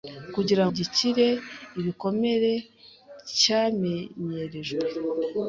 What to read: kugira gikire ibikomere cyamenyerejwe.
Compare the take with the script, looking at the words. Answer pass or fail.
pass